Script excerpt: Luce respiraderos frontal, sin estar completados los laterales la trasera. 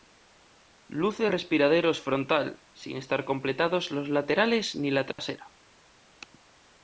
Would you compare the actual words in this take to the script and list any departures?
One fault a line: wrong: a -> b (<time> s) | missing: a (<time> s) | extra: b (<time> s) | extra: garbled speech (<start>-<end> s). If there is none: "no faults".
extra: ni (4.8 s)